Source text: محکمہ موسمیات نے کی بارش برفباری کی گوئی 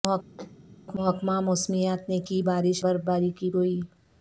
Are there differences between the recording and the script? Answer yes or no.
no